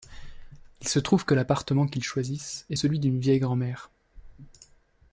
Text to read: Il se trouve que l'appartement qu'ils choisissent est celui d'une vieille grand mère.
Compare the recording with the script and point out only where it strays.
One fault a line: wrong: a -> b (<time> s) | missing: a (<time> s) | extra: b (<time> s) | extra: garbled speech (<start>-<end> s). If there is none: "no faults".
no faults